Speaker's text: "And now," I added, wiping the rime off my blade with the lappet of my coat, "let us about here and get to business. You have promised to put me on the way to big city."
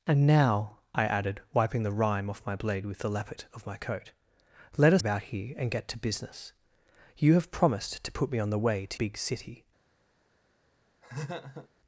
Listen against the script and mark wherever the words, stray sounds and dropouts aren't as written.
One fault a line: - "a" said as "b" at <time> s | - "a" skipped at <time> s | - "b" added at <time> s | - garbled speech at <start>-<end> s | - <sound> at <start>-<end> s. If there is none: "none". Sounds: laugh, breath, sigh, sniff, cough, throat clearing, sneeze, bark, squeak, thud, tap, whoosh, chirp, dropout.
- laugh at 11.0-11.7 s